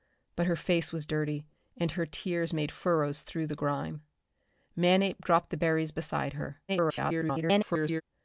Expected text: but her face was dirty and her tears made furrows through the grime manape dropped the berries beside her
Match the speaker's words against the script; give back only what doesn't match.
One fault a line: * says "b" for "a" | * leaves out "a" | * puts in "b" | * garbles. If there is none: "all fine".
* garbles